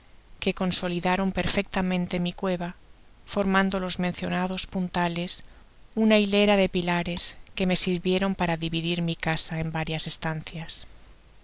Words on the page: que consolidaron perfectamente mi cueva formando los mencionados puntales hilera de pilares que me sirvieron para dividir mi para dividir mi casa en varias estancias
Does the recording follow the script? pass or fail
fail